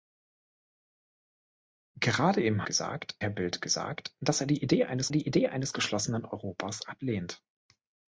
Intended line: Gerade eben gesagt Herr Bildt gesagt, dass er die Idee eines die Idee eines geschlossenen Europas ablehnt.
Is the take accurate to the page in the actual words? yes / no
yes